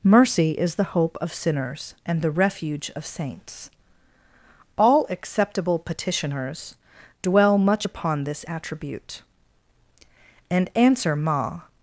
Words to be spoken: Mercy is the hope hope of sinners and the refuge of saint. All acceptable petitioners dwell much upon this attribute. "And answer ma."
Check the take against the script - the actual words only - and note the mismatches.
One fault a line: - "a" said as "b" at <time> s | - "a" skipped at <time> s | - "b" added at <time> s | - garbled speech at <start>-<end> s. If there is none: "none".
- "hope" skipped at 1.1 s
- "saint" said as "saints" at 3.0 s